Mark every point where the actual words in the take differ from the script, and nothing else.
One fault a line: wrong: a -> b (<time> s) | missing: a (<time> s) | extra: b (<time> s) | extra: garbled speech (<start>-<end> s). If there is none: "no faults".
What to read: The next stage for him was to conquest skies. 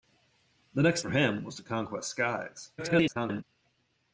missing: stage (1.0 s)
extra: garbled speech (2.8-3.4 s)